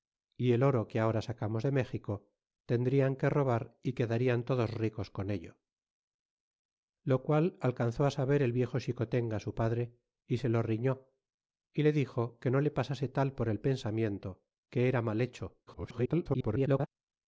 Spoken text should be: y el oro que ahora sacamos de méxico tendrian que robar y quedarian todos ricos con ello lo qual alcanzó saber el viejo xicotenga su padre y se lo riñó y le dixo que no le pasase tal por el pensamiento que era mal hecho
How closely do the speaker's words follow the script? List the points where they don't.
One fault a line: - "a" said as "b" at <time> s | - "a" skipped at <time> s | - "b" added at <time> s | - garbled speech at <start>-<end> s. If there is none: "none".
- garbled speech at 15.7-16.9 s